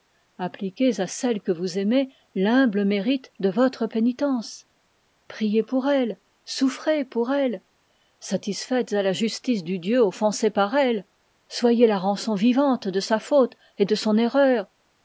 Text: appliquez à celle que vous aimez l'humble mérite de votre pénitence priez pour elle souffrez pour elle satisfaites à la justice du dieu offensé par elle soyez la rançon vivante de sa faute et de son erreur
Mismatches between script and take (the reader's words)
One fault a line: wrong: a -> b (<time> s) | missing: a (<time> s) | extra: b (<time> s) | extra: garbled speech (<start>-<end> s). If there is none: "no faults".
no faults